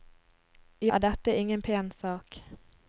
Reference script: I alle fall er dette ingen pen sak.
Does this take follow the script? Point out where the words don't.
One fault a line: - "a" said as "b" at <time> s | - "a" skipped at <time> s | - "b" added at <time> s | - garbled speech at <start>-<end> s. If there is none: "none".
- "alle fall" skipped at 0.9 s